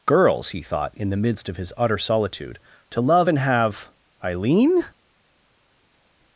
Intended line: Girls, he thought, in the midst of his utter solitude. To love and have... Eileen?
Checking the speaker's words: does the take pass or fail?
pass